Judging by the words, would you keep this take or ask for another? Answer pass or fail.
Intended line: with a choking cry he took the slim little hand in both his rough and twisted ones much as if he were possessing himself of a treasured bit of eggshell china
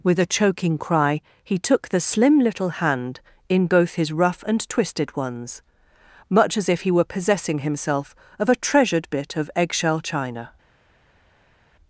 pass